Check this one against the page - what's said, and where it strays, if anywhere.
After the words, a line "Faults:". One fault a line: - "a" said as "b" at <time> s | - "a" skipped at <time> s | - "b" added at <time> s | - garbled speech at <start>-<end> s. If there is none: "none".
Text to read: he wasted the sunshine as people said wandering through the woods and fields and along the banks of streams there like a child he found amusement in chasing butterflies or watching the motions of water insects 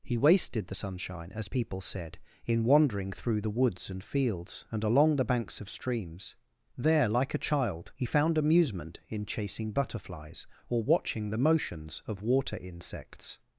he wasted the sunshine as people said in wandering through the woods and fields and along the banks of streams there like a child he found amusement in chasing butterflies or watching the motions of water insects
Faults:
- "in" added at 2.4 s